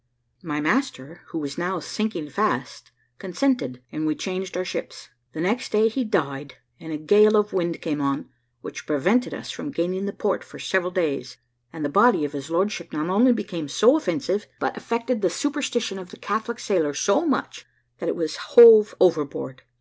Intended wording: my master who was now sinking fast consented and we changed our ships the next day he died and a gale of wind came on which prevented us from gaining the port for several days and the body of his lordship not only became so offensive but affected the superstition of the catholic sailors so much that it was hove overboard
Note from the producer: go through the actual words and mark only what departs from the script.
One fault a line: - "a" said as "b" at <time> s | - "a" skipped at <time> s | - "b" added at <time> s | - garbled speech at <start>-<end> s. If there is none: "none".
none